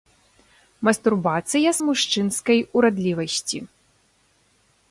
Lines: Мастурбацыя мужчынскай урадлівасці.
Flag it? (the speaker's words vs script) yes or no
no